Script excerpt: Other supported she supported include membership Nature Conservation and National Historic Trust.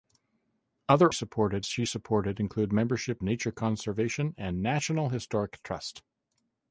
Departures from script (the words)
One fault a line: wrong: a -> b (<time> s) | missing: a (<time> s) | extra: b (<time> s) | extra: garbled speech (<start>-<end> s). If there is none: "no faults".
no faults